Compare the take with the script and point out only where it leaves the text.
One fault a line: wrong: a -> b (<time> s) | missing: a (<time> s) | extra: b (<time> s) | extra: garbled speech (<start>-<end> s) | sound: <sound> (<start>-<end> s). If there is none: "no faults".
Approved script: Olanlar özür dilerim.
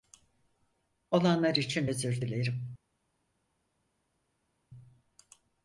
extra: için (1.6 s)